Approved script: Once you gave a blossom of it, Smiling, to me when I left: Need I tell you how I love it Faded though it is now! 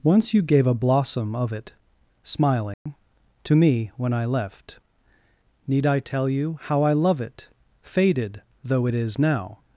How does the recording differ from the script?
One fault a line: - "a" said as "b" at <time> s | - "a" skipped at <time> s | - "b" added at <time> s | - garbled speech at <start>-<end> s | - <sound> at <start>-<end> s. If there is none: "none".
- dropout at 2.7-2.9 s